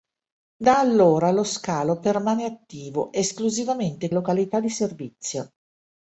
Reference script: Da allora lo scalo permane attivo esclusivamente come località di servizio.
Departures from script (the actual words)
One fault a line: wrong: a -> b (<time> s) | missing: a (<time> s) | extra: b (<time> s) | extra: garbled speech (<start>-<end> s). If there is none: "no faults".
missing: come (4.1 s)